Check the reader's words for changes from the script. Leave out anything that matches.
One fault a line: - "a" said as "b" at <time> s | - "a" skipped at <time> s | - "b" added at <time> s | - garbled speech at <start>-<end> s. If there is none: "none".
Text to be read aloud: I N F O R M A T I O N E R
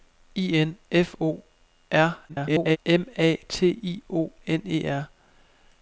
- garbled speech at 2.3-2.8 s